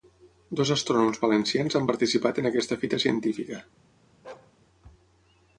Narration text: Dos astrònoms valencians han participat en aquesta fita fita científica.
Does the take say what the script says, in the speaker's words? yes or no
no